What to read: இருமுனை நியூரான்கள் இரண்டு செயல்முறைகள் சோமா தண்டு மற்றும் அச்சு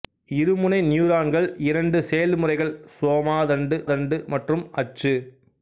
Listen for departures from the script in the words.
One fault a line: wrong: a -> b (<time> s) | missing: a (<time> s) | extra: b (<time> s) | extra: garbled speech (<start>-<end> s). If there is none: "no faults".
extra: தண்டு (3.9 s)